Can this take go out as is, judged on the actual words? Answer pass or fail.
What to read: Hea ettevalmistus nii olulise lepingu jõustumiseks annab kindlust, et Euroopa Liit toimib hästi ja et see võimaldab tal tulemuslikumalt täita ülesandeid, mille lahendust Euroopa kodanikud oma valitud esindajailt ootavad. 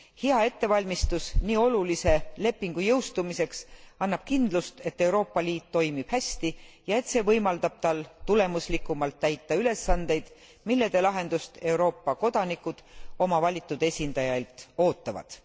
pass